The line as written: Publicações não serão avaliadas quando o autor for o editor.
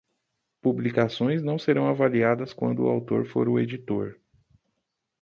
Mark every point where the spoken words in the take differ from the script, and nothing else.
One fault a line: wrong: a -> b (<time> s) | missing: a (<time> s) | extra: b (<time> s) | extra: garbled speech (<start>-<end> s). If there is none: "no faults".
no faults